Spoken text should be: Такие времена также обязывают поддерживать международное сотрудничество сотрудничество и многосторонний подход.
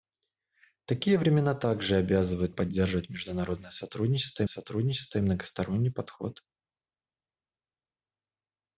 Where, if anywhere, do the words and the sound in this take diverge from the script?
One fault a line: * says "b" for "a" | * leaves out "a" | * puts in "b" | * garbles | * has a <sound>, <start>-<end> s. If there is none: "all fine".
all fine